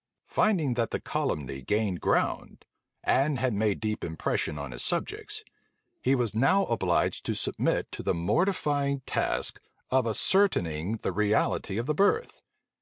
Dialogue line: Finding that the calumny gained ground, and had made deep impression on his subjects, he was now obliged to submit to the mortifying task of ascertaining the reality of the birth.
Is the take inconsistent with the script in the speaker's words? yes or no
no